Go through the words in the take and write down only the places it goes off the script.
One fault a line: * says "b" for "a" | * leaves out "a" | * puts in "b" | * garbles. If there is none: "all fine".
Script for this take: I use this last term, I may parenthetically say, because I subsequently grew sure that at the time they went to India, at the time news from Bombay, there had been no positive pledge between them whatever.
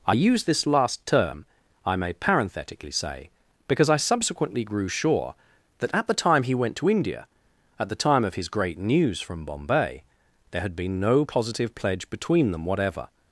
* says "he" for "they"
* puts in "of his great"